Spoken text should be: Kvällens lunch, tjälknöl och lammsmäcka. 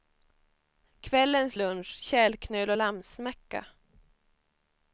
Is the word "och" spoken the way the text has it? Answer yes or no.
yes